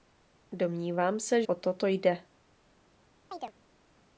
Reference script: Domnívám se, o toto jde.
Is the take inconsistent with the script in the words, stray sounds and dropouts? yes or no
yes